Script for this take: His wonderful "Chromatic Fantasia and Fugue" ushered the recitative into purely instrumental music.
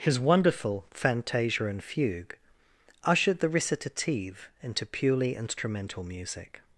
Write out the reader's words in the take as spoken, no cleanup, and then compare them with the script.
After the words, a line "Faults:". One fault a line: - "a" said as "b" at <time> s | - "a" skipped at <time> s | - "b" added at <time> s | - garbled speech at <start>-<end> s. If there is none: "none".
His wonderful "Fantasia and Fugue" ushered the recitative into purely instrumental music.
Faults:
- "Chromatic" skipped at 0.9 s